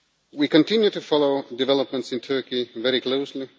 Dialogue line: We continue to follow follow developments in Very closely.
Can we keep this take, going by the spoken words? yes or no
no